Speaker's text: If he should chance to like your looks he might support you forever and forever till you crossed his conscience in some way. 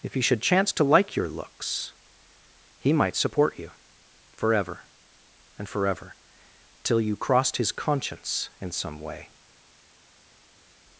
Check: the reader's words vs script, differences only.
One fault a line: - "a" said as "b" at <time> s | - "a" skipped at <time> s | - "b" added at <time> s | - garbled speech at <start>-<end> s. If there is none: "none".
none